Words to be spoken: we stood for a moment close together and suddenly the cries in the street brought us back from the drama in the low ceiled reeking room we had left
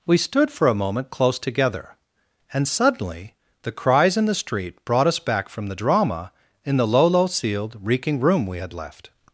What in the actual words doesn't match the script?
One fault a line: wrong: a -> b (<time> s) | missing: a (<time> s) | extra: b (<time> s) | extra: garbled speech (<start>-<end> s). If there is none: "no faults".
extra: low (7.1 s)